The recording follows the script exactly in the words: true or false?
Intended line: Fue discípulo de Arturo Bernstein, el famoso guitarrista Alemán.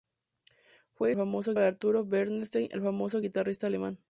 false